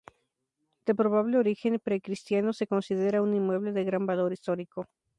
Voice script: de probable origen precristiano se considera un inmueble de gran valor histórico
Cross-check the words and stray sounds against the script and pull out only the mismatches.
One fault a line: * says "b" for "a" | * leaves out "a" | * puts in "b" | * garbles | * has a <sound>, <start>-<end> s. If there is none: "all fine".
all fine